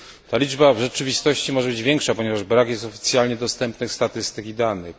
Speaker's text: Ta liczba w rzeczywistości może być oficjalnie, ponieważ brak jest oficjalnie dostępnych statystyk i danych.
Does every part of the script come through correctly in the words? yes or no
no